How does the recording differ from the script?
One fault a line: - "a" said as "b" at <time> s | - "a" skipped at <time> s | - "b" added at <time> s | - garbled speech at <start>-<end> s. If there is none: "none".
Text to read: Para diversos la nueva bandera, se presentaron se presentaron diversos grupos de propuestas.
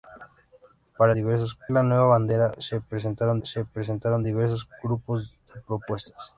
none